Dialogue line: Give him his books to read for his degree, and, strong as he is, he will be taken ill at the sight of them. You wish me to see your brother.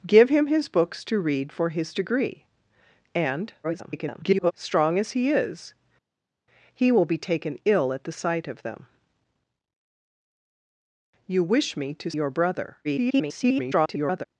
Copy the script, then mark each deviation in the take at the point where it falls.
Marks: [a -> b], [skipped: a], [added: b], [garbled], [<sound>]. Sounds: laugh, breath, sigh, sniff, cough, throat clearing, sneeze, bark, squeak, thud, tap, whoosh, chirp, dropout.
Give him his books to read for his degree, and, [garbled] strong as he is, he will be taken ill at the sight of them. You wish me to [skipped: see] your brother. [garbled]